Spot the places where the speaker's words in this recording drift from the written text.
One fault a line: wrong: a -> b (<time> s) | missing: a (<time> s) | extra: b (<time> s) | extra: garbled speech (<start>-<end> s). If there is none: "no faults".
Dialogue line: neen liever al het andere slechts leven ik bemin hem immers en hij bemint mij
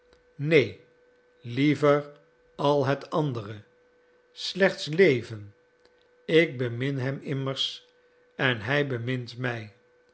no faults